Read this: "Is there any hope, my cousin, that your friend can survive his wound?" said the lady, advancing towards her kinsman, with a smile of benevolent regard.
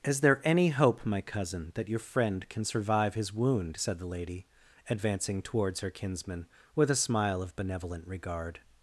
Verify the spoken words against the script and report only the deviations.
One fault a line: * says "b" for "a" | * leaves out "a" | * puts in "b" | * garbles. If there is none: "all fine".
all fine